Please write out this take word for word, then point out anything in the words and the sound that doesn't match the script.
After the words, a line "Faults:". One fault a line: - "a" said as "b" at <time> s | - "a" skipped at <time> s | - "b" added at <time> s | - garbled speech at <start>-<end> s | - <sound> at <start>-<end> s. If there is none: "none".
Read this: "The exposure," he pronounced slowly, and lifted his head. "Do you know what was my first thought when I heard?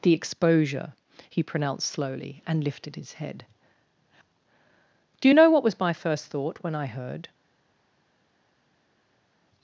"The exposure," he pronounced slowly, and lifted his head. "Do you know what was my first thought when I heard?
Faults:
none